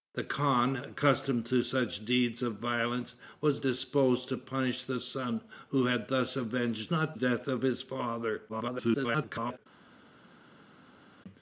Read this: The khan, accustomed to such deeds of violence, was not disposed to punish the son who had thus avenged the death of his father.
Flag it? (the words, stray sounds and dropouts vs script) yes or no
yes